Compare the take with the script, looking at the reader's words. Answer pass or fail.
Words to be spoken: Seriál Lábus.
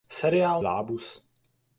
pass